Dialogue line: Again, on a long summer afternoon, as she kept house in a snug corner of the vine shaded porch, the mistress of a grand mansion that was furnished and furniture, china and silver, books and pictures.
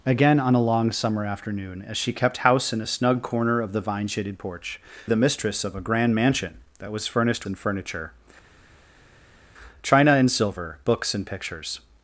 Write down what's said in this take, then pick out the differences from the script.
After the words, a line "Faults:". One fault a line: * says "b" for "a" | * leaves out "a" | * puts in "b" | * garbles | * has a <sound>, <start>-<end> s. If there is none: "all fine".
Again, on a long summer afternoon, as she kept house in a snug corner of the vine shaded porch, the mistress of a grand mansion that was furnished and furniture, china and silver, books and pictures.
Faults:
all fine